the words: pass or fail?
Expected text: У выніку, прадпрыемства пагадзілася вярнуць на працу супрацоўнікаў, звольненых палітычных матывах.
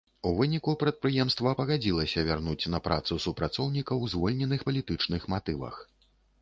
pass